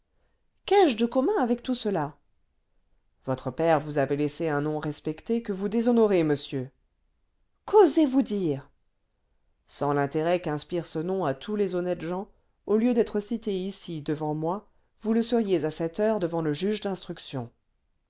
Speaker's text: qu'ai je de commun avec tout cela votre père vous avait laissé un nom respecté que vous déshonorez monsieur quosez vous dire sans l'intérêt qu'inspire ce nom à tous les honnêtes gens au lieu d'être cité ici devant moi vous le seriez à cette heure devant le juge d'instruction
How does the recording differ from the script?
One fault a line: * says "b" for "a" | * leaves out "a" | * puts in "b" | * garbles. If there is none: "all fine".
all fine